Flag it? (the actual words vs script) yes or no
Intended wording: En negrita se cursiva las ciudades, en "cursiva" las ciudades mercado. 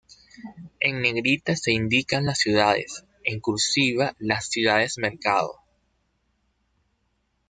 yes